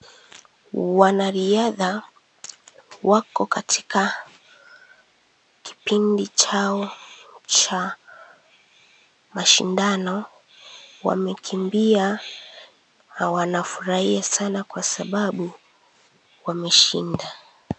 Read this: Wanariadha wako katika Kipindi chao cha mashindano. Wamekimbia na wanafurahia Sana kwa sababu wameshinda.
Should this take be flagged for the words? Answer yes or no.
no